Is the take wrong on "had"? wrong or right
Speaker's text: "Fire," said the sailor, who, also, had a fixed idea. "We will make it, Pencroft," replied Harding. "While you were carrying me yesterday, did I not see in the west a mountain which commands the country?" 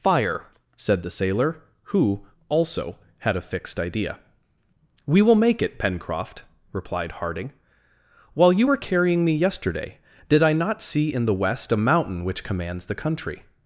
right